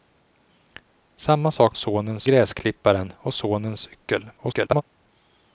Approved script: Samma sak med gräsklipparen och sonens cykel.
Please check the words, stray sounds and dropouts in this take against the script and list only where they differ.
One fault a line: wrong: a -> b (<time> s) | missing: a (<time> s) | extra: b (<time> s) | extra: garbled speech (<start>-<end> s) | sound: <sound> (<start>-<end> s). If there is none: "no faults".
wrong: med -> sonens (1.8 s)
extra: garbled speech (4.4-4.8 s)